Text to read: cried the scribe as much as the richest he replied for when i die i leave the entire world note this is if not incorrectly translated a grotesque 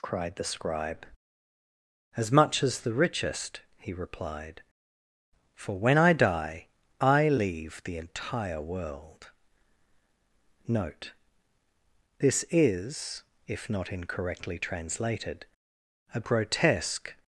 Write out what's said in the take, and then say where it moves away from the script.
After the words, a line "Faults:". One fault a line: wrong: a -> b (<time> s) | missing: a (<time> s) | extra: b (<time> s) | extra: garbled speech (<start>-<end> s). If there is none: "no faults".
cried the scribe as much as the richest he replied for when i die i leave the entire world note this is if not incorrectly translated a grotesque
Faults:
no faults